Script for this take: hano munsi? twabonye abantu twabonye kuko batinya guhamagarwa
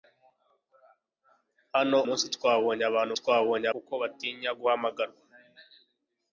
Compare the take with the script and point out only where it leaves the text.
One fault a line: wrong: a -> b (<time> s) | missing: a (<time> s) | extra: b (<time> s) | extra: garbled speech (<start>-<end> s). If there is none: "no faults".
no faults